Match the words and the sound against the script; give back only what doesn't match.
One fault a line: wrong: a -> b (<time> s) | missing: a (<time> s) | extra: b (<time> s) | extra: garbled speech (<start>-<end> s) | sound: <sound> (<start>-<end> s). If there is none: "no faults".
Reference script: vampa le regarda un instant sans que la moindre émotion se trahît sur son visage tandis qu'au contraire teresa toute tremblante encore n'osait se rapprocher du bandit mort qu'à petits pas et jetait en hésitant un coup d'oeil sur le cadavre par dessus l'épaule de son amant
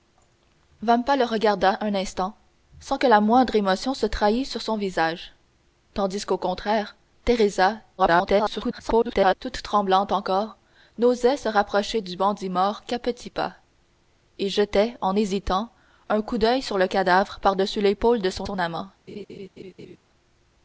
extra: garbled speech (8.0-9.3 s)
extra: son (18.4 s)
sound: laugh (19.1-20.0 s)